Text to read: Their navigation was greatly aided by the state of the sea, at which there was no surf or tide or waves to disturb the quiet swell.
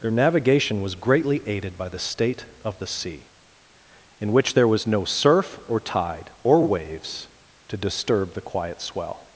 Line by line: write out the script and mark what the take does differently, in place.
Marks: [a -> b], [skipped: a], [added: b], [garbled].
Their navigation was greatly aided by the state of the sea, [at -> in] which there was no surf or tide or waves to disturb the quiet swell.